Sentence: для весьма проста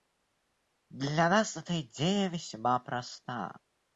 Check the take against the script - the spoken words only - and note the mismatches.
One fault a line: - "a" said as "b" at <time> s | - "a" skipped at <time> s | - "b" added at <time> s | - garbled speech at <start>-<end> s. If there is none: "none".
- "нас эта идея" added at 1.3 s